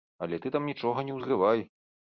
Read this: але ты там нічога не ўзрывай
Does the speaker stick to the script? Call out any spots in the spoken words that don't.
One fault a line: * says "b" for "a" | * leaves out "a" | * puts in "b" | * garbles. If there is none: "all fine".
all fine